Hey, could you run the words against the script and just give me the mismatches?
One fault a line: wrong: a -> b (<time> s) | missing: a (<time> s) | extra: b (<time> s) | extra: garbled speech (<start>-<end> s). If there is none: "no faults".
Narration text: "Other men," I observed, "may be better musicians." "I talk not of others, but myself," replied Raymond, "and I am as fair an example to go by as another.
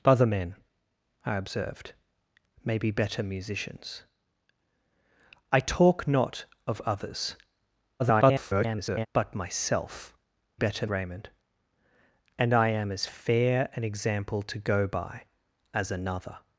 extra: garbled speech (8.0-9.1 s)
wrong: replied -> better (10.5 s)